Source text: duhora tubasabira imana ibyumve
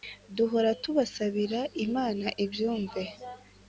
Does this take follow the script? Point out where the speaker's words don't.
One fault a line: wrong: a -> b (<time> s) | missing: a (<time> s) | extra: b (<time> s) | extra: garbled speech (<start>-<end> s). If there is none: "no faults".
no faults